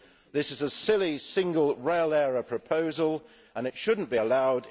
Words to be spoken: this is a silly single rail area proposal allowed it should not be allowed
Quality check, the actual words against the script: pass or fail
fail